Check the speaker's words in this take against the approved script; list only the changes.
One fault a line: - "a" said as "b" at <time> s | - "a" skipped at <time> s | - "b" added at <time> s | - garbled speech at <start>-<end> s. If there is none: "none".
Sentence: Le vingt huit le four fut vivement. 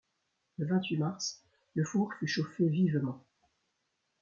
- "mars" added at 1.0 s
- "chauffé" added at 2.3 s